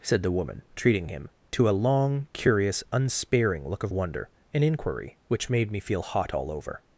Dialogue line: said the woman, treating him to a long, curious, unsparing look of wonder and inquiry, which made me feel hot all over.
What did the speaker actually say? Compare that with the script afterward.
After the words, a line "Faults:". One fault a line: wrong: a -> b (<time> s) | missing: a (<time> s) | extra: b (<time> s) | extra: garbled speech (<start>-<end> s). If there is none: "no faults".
said the woman, treating him to a long, curious, unsparing look of wonder and inquiry, which made me feel hot all over.
Faults:
no faults